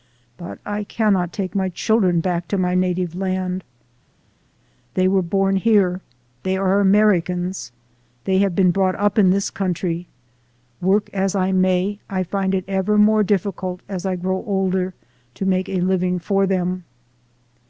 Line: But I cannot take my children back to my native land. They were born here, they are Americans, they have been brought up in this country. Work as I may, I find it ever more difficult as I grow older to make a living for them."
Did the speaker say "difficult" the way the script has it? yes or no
yes